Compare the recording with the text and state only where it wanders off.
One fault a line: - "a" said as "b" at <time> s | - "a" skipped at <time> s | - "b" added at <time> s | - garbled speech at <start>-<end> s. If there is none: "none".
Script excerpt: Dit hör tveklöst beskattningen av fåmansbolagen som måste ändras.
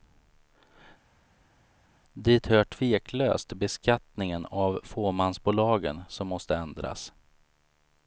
none